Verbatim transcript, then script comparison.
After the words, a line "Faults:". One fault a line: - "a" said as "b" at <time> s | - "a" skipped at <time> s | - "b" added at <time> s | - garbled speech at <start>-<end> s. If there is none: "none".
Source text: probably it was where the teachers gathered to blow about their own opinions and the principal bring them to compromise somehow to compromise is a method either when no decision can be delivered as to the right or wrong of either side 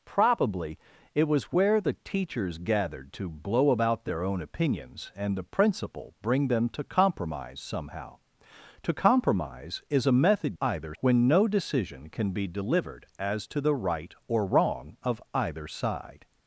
probably it was where the teachers gathered to blow about their own opinions and the principal bring them to compromise somehow to compromise is a method either when no decision can be delivered as to the right or wrong of either side
Faults:
none